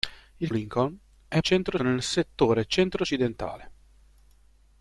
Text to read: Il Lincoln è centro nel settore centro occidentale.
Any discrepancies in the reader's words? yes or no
no